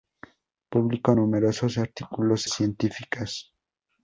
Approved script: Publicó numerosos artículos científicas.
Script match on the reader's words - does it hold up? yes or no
yes